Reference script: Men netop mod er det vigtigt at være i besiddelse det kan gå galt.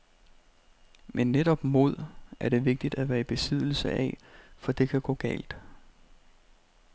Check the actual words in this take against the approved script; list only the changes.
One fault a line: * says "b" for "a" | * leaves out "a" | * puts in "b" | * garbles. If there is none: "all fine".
* puts in "af for"